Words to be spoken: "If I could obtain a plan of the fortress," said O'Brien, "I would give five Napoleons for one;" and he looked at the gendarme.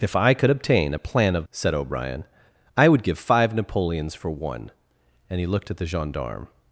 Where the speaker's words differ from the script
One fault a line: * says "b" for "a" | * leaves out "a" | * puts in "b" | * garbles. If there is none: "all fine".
* leaves out "the fortress"